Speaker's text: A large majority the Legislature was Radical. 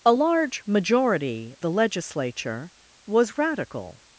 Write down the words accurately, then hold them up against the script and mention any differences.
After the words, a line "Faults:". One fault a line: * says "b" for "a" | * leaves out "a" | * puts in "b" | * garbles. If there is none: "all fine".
A large majority the Legislature was Radical.
Faults:
all fine